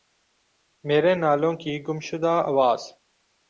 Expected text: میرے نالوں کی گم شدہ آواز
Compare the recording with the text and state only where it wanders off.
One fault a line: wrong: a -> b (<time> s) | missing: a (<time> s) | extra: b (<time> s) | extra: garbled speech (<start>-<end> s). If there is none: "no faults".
no faults